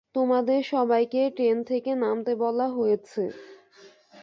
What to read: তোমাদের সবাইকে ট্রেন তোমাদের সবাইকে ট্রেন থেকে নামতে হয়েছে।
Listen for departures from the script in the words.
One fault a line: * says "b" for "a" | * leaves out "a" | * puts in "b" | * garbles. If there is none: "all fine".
* leaves out "তোমাদের সবাইকে ট্রেন"
* puts in "বলা"